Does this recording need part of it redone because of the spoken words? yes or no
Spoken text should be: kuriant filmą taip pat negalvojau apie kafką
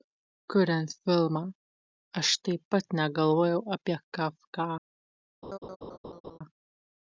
yes